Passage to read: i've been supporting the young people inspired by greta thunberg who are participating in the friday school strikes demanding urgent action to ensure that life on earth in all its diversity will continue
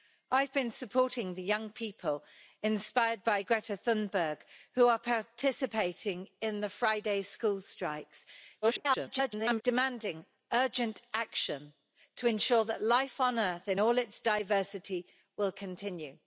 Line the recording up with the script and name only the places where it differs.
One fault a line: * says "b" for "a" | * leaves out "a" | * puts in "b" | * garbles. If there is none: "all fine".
* garbles